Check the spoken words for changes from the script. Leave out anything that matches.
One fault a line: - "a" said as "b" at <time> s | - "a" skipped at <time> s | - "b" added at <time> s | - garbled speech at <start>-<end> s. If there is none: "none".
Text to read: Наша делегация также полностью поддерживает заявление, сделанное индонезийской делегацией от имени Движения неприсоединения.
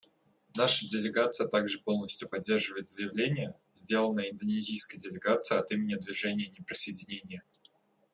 none